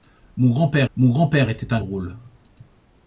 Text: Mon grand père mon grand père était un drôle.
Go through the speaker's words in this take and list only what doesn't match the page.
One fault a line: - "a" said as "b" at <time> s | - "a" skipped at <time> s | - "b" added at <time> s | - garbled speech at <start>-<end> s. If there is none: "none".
none